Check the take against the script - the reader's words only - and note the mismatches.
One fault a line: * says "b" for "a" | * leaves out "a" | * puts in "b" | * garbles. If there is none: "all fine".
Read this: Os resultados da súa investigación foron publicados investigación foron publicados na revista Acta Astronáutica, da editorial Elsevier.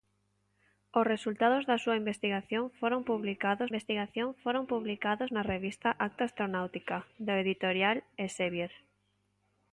all fine